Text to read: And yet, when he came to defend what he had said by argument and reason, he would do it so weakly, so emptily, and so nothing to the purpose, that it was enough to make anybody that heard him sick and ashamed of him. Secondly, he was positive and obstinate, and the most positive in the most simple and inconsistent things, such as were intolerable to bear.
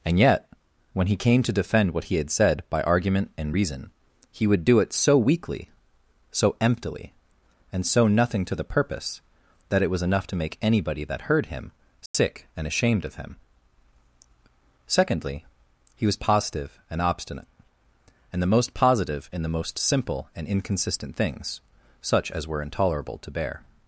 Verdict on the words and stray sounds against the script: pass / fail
fail